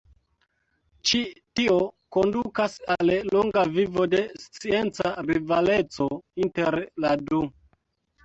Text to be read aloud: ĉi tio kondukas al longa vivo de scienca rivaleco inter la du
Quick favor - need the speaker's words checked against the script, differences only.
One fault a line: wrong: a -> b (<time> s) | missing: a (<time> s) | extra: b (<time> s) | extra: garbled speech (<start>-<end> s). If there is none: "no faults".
no faults